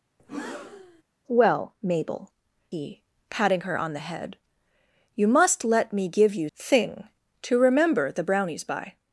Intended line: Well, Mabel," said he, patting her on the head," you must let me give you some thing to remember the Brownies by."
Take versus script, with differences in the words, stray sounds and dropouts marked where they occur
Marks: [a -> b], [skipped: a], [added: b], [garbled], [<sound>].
[breath] Well, Mabel," [skipped: said] he, patting her on the head," you must let me give you [skipped: some] thing to remember the Brownies by."